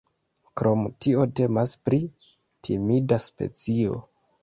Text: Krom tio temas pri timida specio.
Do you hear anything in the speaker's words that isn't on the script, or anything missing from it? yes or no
no